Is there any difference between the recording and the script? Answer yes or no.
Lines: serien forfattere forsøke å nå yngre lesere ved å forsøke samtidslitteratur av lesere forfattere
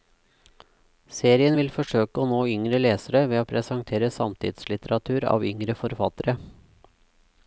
yes